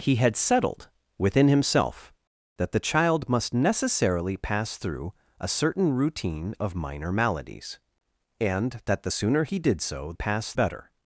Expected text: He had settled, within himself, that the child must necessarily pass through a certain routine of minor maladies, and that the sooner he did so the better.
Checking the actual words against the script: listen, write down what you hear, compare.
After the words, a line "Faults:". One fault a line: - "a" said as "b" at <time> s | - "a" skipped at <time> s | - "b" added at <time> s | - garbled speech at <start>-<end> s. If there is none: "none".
He had settled, within himself, that the child must necessarily pass through a certain routine of minor maladies, and that the sooner he did so pass better.
Faults:
- "the" said as "pass" at 10.1 s